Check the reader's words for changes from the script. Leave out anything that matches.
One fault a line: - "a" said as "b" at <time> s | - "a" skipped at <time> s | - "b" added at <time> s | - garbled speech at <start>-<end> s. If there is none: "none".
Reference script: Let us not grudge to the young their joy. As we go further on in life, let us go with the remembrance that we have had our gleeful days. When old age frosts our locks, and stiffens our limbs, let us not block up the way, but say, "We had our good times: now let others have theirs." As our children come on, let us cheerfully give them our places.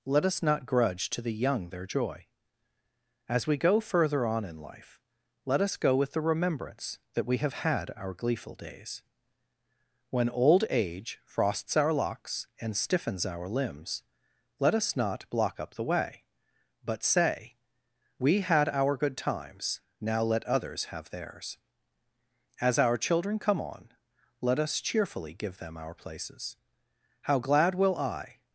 - "How glad will I" added at 27.2 s